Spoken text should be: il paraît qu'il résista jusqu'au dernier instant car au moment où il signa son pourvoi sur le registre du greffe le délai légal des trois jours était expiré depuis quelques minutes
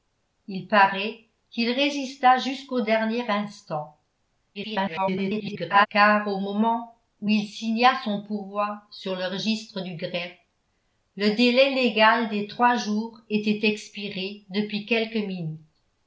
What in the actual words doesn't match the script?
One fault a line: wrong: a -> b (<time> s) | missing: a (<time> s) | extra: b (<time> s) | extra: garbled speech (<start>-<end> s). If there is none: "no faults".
extra: garbled speech (4.5-5.9 s)